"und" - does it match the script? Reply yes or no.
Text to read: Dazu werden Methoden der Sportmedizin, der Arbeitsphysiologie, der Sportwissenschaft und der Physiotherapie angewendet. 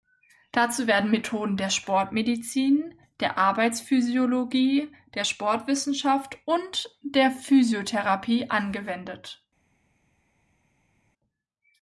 yes